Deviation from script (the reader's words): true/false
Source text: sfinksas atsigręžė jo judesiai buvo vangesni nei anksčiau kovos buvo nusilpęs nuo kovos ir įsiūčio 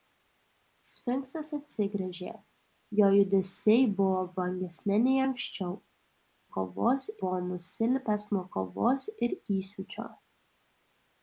false